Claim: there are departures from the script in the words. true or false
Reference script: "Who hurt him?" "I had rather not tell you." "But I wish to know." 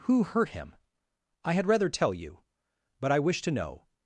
true